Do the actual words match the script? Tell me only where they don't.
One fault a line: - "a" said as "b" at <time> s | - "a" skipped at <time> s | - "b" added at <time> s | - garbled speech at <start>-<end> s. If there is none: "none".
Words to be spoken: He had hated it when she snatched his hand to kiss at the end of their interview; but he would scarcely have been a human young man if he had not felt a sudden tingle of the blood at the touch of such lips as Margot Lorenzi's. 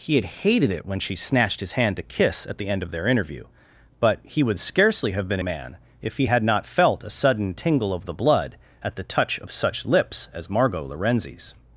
- "a human young" skipped at 5.4 s